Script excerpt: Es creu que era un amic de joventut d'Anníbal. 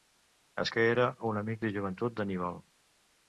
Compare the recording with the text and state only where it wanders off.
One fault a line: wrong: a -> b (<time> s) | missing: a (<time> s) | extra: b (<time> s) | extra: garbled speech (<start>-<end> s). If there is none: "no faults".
missing: creu (0.7 s)